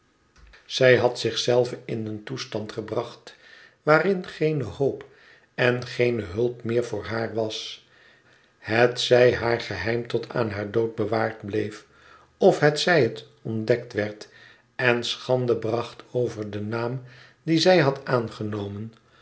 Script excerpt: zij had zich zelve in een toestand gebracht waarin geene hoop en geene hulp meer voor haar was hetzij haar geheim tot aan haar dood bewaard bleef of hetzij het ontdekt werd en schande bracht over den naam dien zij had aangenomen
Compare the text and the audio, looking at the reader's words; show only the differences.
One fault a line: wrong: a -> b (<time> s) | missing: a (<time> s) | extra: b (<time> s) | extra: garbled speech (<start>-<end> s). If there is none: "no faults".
no faults